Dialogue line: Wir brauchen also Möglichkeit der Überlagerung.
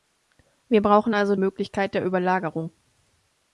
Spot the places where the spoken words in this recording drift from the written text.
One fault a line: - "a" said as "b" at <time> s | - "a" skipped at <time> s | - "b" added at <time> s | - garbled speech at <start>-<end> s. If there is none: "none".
none